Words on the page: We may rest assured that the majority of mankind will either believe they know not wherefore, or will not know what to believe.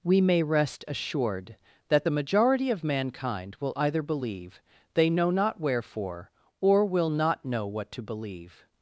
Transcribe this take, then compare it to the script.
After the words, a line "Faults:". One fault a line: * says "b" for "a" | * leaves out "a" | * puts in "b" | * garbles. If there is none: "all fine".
We may rest assured that the majority of mankind will either believe they know not wherefore, or will not know what to believe.
Faults:
all fine